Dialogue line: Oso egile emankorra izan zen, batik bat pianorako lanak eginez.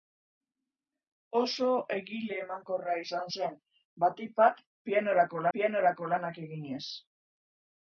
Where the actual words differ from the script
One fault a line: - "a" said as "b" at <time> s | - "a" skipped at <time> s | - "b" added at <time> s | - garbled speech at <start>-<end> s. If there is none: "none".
- "pianorako" added at 5.6 s